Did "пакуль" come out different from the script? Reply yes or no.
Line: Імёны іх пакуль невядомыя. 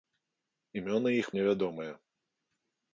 yes